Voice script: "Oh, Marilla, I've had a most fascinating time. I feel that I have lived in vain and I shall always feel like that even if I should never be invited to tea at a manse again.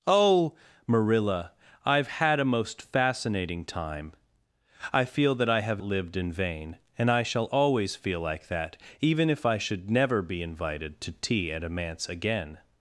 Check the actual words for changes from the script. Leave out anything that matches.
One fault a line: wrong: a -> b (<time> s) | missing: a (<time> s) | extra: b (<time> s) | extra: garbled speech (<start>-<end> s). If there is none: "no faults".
no faults